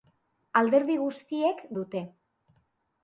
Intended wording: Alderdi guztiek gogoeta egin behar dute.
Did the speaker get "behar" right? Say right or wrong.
wrong